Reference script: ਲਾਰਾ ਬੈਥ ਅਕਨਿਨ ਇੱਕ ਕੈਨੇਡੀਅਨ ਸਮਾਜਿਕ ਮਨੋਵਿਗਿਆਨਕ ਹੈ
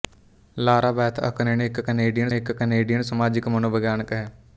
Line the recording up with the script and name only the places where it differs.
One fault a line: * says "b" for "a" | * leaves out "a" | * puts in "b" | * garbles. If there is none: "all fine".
* puts in "ਇੱਕ ਕੈਨੇਡੀਅਨ"